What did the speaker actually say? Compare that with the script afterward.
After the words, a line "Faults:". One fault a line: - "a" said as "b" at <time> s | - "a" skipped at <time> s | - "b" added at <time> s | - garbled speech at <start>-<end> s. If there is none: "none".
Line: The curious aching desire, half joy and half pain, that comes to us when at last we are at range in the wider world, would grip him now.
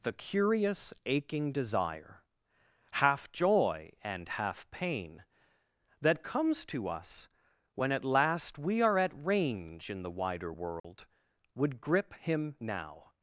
The curious aching desire, half joy and half pain, that comes to us when at last we are at range in the wider world, would grip him now.
Faults:
none